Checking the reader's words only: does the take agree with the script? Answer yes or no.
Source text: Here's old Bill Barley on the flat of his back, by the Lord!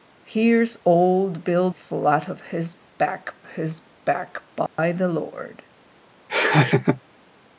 no